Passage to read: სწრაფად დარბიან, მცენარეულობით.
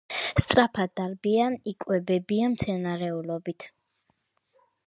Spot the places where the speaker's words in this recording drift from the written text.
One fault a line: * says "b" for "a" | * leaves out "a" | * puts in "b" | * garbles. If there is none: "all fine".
* puts in "იკვებებიან"